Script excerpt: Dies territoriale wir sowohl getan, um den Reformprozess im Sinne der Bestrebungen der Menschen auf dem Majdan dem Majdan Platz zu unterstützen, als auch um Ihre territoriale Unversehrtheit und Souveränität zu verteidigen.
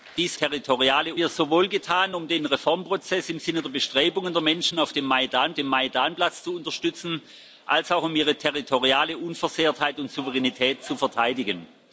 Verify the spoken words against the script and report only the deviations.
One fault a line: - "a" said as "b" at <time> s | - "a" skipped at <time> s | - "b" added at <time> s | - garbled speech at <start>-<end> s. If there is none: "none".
none